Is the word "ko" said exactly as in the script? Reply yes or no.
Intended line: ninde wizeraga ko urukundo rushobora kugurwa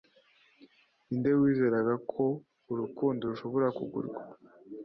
yes